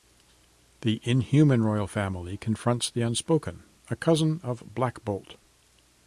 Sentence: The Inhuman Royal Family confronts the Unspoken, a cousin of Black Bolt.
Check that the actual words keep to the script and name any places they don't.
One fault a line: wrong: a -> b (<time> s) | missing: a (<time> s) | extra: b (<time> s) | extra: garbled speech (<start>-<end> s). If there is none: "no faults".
no faults